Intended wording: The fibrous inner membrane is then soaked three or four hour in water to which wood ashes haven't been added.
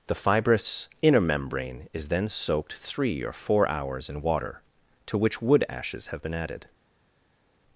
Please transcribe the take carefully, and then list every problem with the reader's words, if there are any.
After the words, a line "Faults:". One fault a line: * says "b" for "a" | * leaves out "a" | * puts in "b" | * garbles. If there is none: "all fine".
The fibrous inner membrane is then soaked three or four hours in water to which wood ashes have been added.
Faults:
* says "hours" for "hour"
* says "have" for "haven't"